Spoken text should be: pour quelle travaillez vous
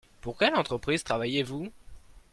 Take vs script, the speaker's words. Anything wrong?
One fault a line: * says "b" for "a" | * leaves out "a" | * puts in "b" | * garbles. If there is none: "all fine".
* puts in "entreprise"